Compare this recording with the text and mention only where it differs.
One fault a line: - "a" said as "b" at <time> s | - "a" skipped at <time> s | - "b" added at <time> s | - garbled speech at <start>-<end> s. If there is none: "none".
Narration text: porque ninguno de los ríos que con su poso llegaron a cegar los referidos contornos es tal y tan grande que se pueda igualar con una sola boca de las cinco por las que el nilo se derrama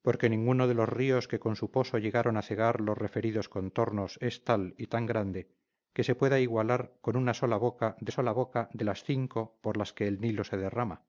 - "sola boca de" added at 8.1 s